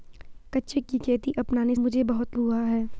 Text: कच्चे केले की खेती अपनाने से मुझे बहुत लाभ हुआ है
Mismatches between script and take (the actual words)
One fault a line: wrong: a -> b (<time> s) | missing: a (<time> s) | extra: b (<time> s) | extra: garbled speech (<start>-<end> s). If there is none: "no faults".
missing: केले (0.8 s)
missing: से (1.7 s)
missing: लाभ (2.4 s)